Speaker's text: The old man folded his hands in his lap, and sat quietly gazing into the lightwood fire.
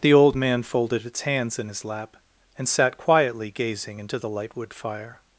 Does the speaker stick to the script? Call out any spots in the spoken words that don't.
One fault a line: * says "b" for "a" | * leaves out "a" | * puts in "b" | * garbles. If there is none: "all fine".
* says "its" for "his"